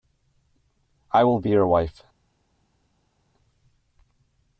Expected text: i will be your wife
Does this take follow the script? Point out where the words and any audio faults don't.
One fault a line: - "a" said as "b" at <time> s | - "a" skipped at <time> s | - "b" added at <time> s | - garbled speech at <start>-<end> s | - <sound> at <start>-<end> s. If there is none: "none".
none